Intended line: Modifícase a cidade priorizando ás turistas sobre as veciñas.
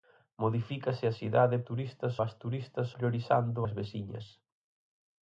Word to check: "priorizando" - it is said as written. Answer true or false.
false